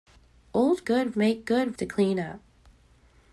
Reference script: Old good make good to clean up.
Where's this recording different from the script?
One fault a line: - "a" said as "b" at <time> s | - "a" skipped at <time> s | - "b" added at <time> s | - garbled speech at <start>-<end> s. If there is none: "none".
none